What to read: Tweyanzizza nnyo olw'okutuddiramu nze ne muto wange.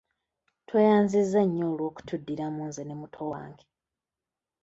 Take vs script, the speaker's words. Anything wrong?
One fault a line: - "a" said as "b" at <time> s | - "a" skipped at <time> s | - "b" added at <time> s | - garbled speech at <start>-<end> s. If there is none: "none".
none